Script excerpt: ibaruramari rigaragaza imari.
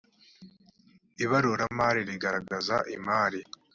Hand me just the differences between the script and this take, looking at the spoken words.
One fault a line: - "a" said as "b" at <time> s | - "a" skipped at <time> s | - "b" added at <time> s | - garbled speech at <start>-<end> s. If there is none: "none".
none